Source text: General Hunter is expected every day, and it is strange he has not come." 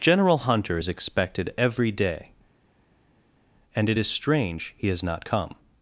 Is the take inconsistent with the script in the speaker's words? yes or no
no